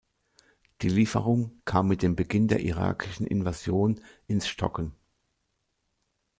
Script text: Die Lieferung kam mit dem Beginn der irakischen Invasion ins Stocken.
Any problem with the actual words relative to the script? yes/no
no